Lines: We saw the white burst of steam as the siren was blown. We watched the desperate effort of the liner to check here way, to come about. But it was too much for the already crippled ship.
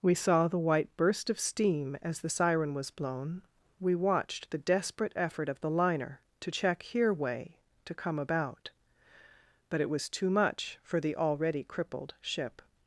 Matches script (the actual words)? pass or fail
pass